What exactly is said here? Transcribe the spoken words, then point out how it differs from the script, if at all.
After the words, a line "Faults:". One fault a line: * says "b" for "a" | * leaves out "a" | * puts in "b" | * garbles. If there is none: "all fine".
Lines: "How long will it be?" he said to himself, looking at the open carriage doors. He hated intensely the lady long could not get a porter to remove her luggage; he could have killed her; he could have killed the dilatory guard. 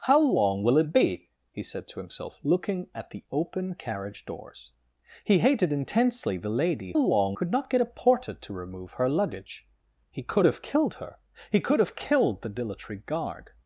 "How long will it be?" he said to himself, looking at the open carriage doors. He hated intensely the lady long could not get a porter to remove her luggage; he could have killed her; he could have killed the dilatory guard.
Faults:
all fine